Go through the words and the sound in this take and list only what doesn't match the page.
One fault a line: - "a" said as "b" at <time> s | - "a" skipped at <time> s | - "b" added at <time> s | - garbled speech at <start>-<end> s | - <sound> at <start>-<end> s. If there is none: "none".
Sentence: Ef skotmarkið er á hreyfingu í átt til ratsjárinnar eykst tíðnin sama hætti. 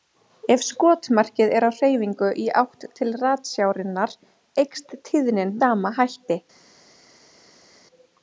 none